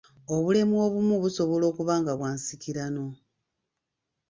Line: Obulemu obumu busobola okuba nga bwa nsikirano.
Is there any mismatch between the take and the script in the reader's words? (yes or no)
no